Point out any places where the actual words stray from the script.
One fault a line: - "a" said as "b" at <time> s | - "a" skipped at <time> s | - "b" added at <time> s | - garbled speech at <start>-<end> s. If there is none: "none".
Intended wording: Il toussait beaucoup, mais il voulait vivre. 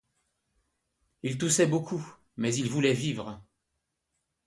none